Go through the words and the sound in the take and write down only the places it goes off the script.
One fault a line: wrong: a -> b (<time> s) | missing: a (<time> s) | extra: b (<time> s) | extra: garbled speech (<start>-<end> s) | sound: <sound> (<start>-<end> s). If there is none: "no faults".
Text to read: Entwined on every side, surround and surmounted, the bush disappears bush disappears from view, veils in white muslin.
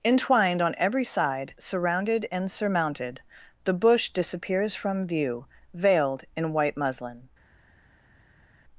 wrong: surround -> surrounded (1.6 s)
missing: bush disappears (4.7 s)
wrong: veils -> veiled (5.8 s)